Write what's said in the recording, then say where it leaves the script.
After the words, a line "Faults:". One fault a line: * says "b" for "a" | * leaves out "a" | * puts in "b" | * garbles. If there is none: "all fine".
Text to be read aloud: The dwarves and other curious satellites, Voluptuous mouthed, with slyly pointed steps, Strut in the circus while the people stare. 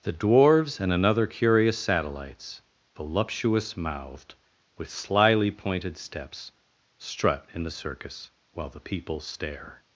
The dwarves and another curious satellites, Voluptuous mouthed, with slyly pointed steps, Strut in the circus while the people stare.
Faults:
* says "another" for "other"